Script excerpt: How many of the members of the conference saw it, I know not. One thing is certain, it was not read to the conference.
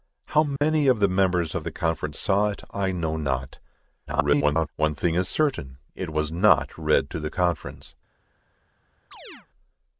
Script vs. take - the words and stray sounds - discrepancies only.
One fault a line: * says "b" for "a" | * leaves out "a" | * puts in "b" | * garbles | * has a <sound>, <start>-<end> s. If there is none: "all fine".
* has a dropout, 0.6-0.6 s
* garbles
* has a chirp, 9.1-9.5 s